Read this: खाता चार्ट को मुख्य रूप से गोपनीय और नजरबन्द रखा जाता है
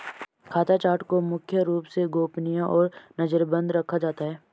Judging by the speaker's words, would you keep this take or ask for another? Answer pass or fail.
pass